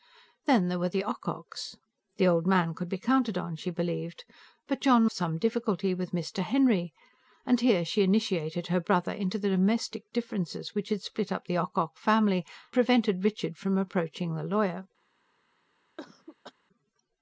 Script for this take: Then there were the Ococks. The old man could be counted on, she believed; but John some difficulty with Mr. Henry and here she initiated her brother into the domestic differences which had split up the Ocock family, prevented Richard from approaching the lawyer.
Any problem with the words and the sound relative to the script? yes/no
yes